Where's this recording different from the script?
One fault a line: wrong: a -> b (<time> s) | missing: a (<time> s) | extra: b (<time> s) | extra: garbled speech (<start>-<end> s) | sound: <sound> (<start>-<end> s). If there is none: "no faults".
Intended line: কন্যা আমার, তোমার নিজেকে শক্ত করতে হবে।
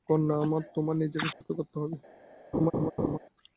sound: dropout (1.3-1.4 s)
sound: laugh (2.5-3.2 s)